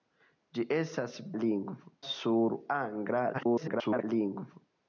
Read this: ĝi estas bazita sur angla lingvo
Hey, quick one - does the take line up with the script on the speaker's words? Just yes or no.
no